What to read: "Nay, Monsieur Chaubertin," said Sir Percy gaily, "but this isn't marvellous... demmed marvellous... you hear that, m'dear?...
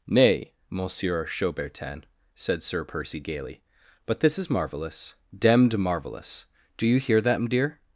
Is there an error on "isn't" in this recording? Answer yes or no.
yes